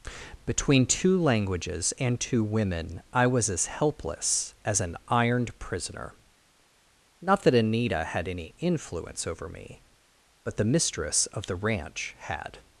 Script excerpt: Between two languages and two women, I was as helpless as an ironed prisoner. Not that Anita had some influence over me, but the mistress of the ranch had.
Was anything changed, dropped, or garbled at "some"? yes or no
yes